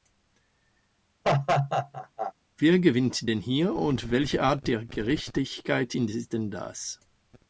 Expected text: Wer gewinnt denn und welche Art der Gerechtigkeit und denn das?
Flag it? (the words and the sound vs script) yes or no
yes